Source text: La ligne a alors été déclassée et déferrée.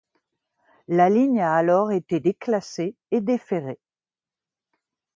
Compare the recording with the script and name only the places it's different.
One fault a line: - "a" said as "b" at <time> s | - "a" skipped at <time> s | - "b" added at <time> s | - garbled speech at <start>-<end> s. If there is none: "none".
none